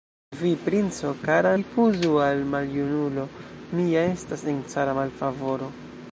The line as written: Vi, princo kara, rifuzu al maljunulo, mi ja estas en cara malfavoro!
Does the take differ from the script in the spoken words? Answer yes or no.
no